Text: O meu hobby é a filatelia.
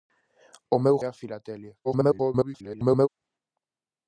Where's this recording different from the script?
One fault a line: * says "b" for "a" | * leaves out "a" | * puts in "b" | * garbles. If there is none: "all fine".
* leaves out "hobby é"
* garbles